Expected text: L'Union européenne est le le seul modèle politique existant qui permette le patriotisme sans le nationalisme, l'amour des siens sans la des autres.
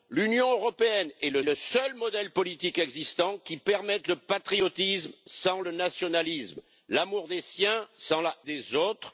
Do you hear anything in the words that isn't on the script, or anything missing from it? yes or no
no